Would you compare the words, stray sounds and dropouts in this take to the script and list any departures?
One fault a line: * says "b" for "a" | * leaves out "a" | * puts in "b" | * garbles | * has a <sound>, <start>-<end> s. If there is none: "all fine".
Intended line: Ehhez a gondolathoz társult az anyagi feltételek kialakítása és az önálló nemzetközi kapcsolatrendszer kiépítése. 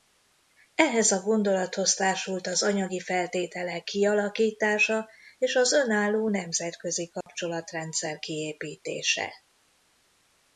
* has a dropout, 7.2-7.3 s